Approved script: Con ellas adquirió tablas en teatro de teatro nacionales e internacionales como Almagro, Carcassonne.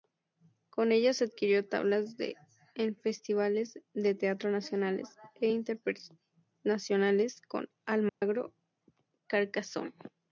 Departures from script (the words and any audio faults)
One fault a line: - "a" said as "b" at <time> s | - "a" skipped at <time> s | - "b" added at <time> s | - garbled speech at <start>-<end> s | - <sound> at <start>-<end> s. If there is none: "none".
- "teatro" said as "festivales" at 3.0 s
- dropout at 8.1-8.2 s